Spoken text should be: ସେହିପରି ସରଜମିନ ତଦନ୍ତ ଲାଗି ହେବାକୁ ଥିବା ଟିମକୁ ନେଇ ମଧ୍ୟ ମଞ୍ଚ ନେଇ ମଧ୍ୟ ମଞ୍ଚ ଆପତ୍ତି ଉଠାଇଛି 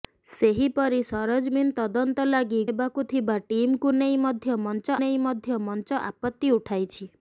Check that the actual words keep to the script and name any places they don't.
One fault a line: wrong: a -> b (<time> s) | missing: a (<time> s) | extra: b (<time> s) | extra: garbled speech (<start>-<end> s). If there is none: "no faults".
no faults